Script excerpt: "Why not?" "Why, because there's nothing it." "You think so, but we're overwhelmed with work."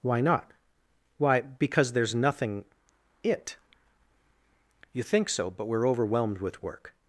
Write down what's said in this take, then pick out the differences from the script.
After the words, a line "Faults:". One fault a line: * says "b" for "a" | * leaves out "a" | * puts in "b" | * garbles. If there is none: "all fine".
"Why not?" "Why, because there's nothing it." "You think so, but we're overwhelmed with work."
Faults:
all fine